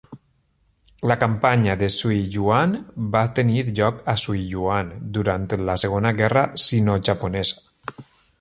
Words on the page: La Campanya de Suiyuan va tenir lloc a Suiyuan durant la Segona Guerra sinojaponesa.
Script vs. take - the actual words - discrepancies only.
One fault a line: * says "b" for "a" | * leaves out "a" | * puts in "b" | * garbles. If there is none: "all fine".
all fine